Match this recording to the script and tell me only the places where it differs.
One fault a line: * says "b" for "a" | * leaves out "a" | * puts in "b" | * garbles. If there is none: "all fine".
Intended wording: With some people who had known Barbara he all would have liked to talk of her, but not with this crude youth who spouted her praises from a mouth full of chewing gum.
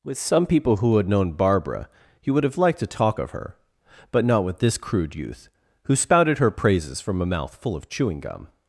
* leaves out "all"